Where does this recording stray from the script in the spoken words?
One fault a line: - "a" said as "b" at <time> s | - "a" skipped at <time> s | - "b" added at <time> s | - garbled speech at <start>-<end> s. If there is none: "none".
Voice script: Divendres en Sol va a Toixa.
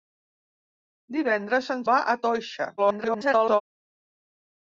- "Sol" skipped at 1.9 s
- garbled speech at 2.8-3.6 s